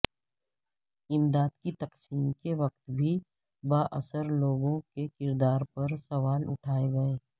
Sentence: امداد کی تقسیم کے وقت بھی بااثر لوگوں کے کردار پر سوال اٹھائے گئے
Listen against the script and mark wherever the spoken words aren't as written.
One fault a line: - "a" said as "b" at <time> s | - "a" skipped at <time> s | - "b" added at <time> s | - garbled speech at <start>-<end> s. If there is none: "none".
none